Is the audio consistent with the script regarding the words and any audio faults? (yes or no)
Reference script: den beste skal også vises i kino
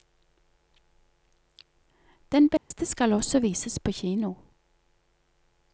no